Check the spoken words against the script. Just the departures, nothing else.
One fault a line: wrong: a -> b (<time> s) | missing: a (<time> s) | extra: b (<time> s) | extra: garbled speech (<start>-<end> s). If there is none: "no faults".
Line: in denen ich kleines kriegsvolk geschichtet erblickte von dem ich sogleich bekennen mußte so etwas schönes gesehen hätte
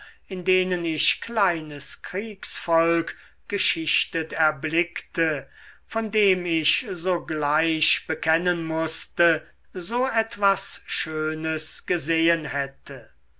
no faults